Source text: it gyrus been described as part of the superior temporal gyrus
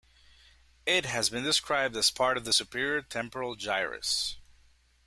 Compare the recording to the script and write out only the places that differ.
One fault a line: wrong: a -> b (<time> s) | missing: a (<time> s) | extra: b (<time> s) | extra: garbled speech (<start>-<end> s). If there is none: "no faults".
wrong: gyrus -> has (1.1 s)